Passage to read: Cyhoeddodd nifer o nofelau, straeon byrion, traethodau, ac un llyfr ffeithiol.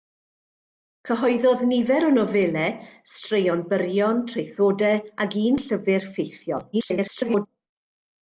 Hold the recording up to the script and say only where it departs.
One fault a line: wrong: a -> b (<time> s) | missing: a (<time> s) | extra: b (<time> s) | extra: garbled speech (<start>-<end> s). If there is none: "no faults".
extra: garbled speech (6.7-7.5 s)